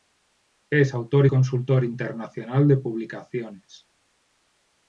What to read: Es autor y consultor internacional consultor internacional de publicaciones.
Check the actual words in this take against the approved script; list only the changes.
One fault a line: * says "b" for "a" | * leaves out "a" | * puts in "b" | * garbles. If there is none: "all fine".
* leaves out "consultor internacional"